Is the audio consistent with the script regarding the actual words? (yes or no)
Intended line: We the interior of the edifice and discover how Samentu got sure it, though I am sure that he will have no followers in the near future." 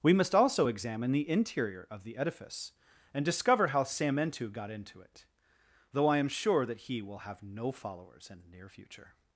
no